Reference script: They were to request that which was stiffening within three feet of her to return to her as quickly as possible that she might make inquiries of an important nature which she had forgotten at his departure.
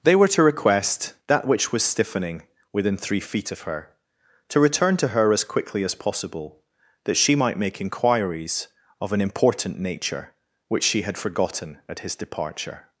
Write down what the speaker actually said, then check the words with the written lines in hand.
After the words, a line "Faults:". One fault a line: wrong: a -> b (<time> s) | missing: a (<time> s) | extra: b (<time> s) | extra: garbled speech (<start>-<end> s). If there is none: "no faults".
They were to request that which was stiffening within three feet of her to return to her as quickly as possible that she might make inquiries of an important nature which she had forgotten at his departure.
Faults:
no faults